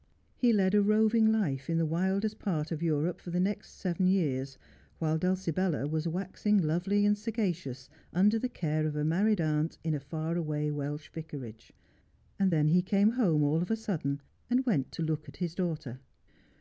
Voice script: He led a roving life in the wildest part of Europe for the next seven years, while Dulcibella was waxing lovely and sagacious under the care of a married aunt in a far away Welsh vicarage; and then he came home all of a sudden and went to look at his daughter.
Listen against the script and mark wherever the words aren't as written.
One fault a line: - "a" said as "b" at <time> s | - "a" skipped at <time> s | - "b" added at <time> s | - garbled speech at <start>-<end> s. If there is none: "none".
none